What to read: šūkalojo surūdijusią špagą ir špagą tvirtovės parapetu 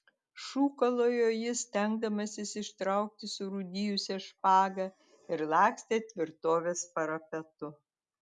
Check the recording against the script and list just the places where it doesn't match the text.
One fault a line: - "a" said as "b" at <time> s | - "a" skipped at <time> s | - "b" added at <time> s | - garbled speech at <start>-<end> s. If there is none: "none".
- "jis stengdamasis ištraukti" added at 1.3 s
- "špagą" said as "lakstė" at 5.6 s